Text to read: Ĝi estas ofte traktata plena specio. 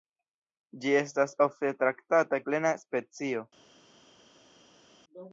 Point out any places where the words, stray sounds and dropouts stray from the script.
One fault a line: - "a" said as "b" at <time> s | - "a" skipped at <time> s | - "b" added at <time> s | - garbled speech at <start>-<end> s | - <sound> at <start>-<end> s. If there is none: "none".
none